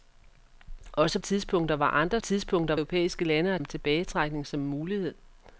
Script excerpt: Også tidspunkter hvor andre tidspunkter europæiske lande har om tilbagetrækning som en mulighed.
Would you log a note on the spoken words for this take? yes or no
no